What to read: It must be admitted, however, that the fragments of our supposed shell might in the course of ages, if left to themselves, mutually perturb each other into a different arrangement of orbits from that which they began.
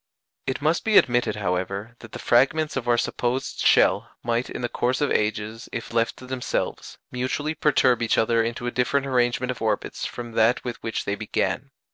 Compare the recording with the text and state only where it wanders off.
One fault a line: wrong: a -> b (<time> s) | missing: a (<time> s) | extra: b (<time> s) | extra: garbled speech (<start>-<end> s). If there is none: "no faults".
extra: with (10.6 s)